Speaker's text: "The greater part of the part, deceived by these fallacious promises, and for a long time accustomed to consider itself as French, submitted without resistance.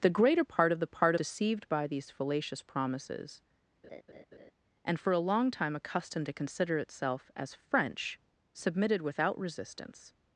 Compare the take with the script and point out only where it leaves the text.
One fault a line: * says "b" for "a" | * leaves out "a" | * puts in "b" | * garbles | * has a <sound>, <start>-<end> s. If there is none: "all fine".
* has a laugh, 3.8-4.5 s